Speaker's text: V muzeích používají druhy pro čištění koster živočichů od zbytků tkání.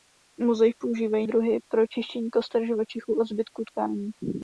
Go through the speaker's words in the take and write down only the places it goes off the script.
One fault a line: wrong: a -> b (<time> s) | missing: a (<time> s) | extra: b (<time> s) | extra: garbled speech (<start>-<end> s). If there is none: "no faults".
no faults